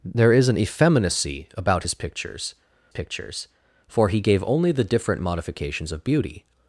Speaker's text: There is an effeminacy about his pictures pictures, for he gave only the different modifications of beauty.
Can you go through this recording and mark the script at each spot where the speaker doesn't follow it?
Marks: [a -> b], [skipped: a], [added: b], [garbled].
There is an effeminacy about his pictures pictures, for he gave only the different modifications of beauty.